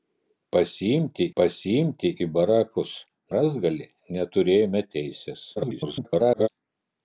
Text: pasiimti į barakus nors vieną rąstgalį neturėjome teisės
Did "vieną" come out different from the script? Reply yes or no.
yes